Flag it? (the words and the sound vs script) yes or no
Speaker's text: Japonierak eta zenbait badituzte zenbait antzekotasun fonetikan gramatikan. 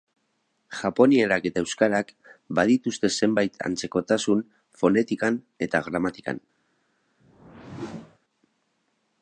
yes